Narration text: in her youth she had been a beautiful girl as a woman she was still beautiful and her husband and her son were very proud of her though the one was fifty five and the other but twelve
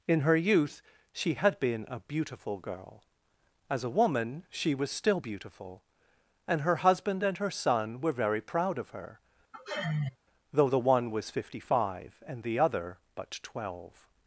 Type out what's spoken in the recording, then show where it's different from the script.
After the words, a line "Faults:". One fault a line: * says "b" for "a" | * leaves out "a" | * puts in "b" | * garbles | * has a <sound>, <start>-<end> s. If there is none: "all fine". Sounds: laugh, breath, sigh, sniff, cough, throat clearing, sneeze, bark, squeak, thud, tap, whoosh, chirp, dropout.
in her youth she had been a beautiful girl as a woman she was still beautiful and her husband and her son were very proud of her though the one was fifty five and the other but twelve
Faults:
* has a sigh, 9.5-10.2 s